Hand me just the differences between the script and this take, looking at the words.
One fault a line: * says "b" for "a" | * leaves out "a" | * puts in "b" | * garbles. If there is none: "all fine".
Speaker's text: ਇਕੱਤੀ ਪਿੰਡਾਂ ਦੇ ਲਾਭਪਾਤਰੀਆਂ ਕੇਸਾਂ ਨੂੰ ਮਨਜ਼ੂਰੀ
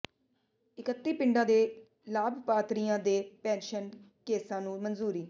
* puts in "ਦੇ ਪੈਨਸ਼ਨ"